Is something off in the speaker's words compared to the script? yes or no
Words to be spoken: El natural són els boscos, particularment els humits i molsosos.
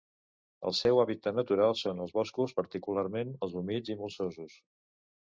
yes